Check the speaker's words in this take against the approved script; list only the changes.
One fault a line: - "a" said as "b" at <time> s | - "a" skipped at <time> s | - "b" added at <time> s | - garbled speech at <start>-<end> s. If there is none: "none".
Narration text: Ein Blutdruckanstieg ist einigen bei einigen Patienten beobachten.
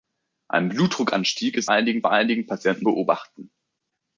none